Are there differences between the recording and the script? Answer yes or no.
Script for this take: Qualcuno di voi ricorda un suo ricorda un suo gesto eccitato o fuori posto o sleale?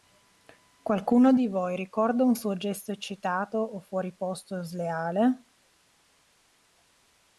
yes